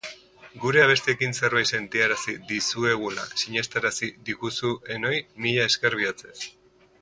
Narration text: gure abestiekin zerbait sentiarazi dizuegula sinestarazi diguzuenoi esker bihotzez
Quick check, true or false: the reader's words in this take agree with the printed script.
false